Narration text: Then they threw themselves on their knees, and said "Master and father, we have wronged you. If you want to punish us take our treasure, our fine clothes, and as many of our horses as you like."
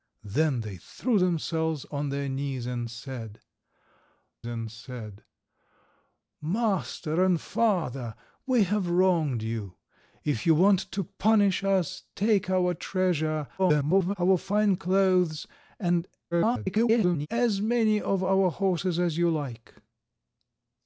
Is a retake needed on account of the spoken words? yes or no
yes